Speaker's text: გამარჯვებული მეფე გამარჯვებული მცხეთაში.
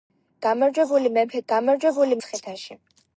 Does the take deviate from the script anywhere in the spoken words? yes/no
no